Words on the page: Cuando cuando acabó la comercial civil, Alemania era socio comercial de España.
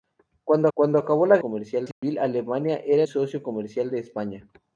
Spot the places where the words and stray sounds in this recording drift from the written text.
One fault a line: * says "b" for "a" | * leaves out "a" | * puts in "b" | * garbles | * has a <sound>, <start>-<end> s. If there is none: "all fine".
* has a dropout, 1.9-2.0 s